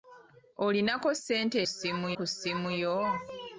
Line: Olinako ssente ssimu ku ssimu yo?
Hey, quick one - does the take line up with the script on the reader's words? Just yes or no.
yes